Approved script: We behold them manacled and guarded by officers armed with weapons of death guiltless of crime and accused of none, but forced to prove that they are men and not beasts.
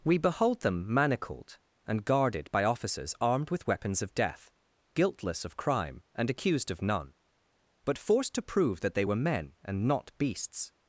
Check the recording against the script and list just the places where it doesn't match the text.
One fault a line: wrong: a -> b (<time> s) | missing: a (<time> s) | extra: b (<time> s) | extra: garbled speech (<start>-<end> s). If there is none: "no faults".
wrong: are -> were (9.0 s)